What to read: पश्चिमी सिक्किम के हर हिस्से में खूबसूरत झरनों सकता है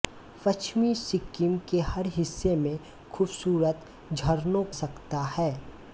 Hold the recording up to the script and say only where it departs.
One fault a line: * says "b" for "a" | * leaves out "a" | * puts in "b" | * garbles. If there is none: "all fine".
all fine